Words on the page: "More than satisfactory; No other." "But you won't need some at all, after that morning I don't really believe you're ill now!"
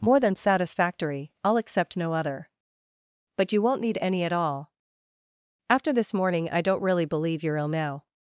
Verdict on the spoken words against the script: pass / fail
fail